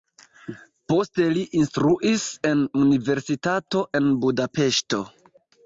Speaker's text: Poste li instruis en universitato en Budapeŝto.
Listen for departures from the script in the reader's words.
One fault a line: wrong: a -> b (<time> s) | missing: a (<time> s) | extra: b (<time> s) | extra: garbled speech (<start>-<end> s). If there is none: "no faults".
no faults